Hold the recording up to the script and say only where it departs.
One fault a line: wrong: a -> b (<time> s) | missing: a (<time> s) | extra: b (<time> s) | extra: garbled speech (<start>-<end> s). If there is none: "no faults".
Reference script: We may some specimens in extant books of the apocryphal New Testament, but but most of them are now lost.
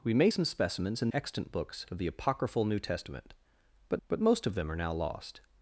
no faults